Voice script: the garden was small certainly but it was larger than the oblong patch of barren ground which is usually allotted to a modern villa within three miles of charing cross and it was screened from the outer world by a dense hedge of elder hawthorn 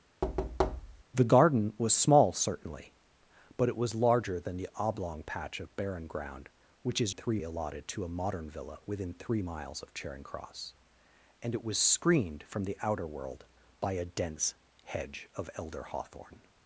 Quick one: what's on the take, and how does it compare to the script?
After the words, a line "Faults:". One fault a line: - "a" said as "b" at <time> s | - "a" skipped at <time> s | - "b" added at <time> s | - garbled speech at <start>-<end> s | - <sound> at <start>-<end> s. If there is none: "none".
the garden was small certainly but it was larger than the oblong patch of barren ground which is three allotted to a modern villa within three miles of charing cross and it was screened from the outer world by a dense hedge of elder hawthorn
Faults:
- thud at 0.2-1.0 s
- "usually" said as "three" at 7.1 s